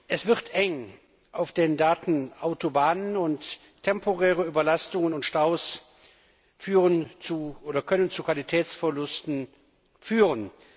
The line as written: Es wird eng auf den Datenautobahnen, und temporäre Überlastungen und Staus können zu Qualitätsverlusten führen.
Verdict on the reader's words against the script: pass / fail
pass